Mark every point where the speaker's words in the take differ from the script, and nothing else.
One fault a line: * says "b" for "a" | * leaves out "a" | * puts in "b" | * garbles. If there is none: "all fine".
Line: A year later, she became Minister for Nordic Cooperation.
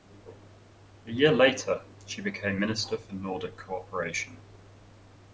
all fine